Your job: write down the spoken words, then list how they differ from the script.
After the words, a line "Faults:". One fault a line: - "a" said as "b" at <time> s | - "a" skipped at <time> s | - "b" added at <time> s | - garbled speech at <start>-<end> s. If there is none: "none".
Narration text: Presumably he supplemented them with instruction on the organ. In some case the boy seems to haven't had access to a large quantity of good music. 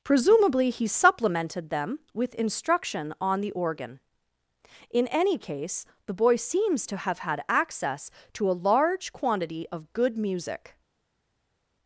Presumably he supplemented them with instruction on the organ. In any case the boy seems to have had access to a large quantity of good music.
Faults:
- "some" said as "any" at 5.1 s
- "haven't" said as "have" at 7.0 s